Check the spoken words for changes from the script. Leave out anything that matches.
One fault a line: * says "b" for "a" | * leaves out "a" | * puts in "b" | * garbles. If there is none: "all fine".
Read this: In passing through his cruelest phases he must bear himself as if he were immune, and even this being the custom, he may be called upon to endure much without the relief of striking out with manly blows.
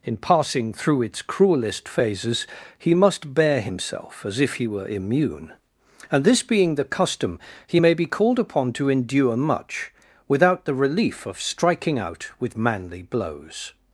* says "its" for "his"
* leaves out "even"